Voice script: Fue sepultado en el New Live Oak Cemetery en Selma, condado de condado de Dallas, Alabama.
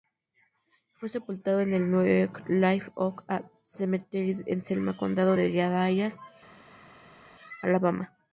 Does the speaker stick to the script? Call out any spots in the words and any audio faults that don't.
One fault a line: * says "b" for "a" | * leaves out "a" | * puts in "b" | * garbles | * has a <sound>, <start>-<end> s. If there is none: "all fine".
* leaves out "condado de"